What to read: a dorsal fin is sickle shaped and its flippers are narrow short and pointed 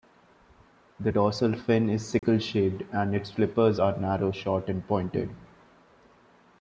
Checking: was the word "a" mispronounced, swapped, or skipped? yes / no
yes